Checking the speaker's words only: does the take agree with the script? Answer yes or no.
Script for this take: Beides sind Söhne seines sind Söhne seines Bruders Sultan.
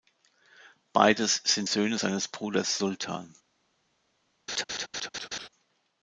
no